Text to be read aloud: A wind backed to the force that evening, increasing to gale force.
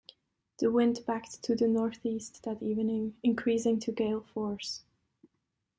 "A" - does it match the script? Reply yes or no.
no